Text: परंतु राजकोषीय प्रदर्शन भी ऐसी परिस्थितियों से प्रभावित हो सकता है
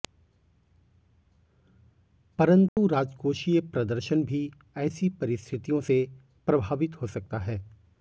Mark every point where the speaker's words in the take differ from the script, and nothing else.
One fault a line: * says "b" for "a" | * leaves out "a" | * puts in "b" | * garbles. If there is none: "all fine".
all fine